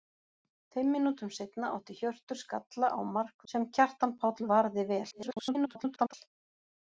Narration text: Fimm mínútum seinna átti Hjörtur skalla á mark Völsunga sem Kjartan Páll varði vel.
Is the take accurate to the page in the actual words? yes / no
no